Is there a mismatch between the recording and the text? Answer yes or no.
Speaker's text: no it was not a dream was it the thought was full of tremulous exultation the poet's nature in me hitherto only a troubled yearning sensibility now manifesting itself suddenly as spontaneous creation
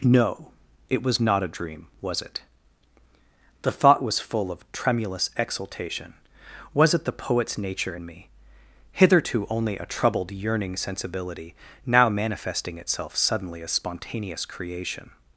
yes